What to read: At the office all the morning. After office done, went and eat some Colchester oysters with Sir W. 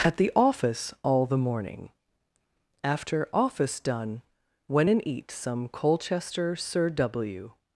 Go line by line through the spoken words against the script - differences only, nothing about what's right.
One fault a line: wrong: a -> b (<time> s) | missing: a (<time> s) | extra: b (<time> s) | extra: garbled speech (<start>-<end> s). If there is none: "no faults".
missing: oysters with (6.5 s)